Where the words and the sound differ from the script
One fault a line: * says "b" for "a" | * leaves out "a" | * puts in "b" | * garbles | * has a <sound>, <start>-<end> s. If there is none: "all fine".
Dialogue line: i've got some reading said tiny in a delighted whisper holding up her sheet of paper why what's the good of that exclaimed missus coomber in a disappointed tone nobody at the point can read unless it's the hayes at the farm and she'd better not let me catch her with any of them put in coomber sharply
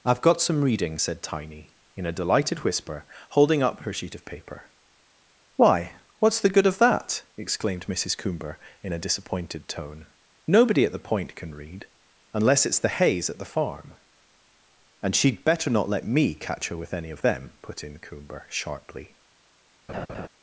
* has a laugh, 19.9-20.3 s